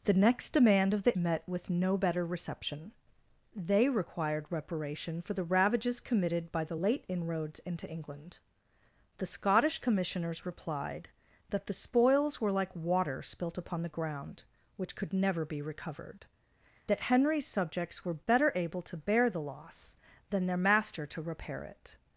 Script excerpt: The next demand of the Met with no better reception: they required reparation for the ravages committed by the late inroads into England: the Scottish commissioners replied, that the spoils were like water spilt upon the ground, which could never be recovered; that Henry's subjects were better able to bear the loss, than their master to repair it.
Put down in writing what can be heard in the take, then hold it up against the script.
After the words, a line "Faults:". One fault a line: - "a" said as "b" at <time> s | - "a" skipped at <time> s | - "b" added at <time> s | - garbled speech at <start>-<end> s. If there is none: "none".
The next demand of the Met with no better reception: they required reparation for the ravages committed by the late inroads into England: the Scottish commissioners replied, that the spoils were like water spilt upon the ground, which could never be recovered; that Henry's subjects were better able to bear the loss, than their master to repair it.
Faults:
none